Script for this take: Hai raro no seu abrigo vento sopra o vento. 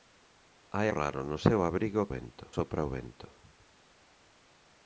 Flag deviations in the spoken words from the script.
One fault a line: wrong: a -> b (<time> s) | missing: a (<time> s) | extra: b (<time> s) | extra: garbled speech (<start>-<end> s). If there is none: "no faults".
no faults